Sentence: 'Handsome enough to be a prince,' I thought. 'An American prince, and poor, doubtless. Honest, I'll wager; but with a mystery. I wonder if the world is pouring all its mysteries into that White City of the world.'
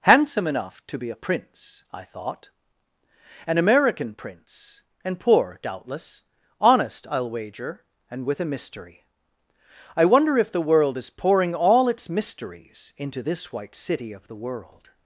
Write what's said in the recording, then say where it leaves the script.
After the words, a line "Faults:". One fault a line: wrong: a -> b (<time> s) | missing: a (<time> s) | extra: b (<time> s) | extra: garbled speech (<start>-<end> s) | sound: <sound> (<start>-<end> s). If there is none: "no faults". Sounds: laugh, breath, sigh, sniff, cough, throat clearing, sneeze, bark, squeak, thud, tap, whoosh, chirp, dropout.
'Handsome enough to be a prince,' I thought. 'An American prince, and poor, doubtless. Honest, I'll wager; and with a mystery. I wonder if the world is pouring all its mysteries into this White City of the world.'
Faults:
wrong: but -> and (8.1 s)
wrong: that -> this (13.2 s)